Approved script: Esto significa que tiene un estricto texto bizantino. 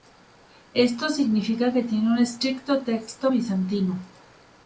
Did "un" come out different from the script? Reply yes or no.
no